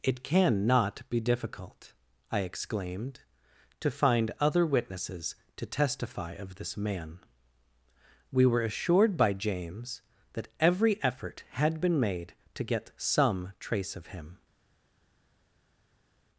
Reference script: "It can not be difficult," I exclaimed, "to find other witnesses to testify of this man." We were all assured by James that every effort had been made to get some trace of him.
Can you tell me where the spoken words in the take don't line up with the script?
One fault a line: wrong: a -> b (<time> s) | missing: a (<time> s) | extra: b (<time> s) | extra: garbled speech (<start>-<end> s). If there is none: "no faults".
missing: all (8.6 s)